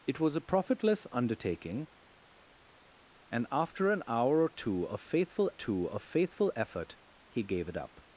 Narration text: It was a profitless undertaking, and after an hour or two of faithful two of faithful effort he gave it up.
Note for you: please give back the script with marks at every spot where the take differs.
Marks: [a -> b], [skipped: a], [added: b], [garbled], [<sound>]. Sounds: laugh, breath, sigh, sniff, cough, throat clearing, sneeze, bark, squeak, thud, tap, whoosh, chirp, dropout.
It was a profitless undertaking, and after an hour or two of faithful two of faithful effort he gave it up.